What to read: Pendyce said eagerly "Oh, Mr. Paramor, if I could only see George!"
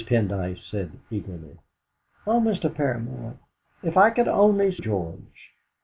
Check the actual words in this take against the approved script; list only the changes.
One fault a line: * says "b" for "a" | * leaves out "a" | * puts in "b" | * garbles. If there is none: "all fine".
* leaves out "see"